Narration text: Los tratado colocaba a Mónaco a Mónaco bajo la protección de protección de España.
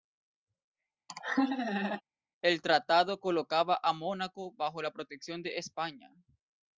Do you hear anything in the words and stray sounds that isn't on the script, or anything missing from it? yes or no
yes